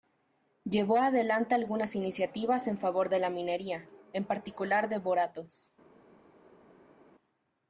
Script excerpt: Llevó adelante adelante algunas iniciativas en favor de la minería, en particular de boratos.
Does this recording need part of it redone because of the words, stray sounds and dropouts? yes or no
yes